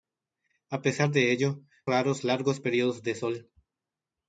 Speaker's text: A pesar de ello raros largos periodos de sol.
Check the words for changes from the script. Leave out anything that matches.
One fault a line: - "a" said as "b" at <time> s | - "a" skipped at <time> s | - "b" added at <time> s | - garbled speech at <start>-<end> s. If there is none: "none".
none